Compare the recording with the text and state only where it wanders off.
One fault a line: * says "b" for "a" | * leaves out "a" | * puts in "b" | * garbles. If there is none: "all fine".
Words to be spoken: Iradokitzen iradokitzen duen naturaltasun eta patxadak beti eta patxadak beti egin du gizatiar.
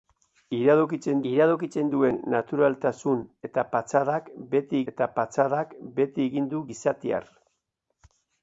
all fine